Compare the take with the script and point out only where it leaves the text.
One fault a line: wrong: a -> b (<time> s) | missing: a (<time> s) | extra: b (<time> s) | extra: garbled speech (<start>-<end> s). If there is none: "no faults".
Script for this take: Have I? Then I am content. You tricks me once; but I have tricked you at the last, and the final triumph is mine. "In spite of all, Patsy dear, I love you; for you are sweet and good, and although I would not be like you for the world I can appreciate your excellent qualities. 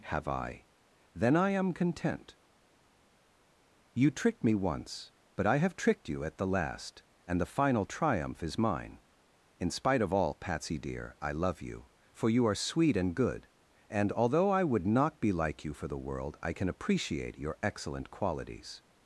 wrong: tricks -> tricked (4.1 s)